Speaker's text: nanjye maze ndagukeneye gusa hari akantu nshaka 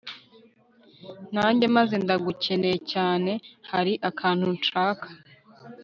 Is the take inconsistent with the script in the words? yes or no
yes